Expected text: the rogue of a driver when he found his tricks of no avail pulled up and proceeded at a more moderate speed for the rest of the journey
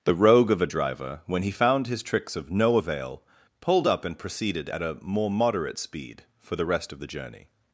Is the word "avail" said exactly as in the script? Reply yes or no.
yes